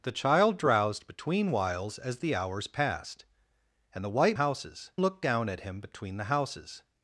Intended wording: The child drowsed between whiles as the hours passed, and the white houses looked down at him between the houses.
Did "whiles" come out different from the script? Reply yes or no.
no